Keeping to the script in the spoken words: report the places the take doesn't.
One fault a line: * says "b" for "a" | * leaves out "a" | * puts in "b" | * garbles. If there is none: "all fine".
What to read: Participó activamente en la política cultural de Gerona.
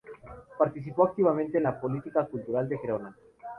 all fine